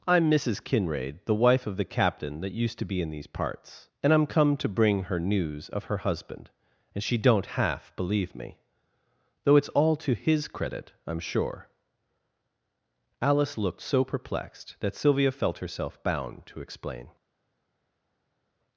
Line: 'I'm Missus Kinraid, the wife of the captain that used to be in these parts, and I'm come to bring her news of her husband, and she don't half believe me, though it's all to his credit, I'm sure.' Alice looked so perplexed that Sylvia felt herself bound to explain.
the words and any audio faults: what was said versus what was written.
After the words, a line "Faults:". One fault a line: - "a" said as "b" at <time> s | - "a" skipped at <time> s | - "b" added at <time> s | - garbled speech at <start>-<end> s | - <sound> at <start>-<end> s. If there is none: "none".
'I'm Missus Kinraid, the wife of the captain that used to be in these parts, and I'm come to bring her news of her husband, and she don't half believe me, though it's all to his credit, I'm sure.' Alice looked so perplexed that Sylvia felt herself bound to explain.
Faults:
none